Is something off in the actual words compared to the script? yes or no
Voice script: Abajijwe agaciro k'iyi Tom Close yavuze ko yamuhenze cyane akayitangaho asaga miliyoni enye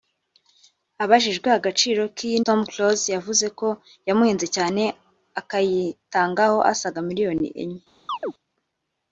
no